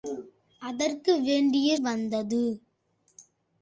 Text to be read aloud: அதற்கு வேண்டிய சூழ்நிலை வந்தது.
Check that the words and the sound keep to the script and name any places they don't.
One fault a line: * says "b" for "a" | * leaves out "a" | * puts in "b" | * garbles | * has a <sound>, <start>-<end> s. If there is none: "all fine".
* leaves out "சூழ்நிலை"